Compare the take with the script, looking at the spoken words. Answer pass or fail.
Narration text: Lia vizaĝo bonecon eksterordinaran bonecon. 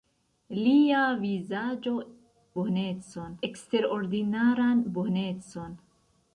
pass